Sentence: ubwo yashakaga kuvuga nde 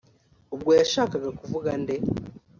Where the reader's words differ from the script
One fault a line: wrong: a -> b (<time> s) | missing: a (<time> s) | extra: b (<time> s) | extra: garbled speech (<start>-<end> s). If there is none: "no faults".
no faults